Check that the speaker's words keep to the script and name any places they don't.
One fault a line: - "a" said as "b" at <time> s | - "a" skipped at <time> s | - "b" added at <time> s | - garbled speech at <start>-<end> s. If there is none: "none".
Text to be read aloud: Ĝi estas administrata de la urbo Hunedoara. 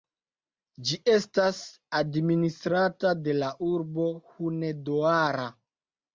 none